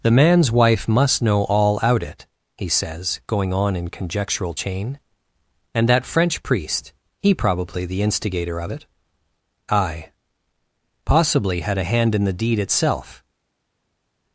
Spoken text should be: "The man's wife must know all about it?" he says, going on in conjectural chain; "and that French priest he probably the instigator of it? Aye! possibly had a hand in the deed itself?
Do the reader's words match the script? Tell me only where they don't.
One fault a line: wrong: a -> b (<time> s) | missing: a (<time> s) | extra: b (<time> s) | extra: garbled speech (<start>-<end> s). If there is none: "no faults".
wrong: about -> out (1.8 s)